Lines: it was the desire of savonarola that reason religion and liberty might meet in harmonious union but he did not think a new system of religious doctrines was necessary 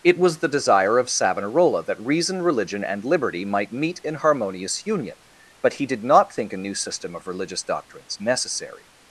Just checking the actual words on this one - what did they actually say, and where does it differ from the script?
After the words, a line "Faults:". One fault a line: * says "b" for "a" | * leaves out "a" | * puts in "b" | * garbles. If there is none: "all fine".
it was the desire of savonarola that reason religion and liberty might meet in harmonious union but he did not think a new system of religious doctrines necessary
Faults:
* leaves out "was"